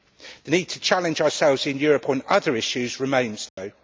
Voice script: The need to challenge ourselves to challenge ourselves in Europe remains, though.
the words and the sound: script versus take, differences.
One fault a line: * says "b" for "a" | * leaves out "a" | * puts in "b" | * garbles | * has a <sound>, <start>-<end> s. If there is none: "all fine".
* says "in Europe on other issues" for "to challenge ourselves in Europe"
* has a dropout, 3.5-3.6 s